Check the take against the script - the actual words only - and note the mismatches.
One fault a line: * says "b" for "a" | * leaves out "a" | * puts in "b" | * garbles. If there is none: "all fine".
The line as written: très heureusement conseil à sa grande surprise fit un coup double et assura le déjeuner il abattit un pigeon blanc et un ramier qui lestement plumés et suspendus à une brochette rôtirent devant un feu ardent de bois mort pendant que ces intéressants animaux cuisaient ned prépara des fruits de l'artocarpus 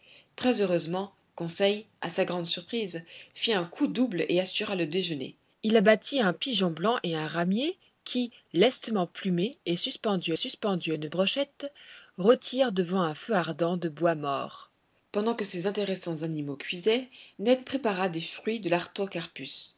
* puts in "suspendus"